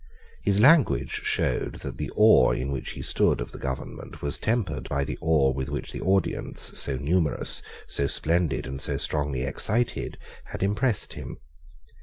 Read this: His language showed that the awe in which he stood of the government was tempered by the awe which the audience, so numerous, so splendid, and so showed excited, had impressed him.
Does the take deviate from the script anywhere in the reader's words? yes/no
yes